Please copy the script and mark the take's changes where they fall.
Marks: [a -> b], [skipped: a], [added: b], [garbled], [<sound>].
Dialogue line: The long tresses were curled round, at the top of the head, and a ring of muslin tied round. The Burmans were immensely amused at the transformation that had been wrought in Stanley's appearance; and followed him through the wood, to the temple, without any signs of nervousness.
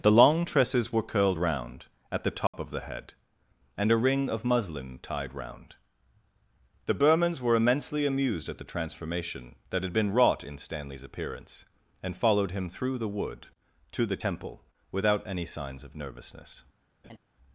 The long tresses were curled round, at the top [dropout] of the head, and a ring of muslin tied round. The Burmans were immensely amused at the transformation that had been wrought in Stanley's appearance; and followed him through the wood, to the temple, without any signs of nervousness. [laugh]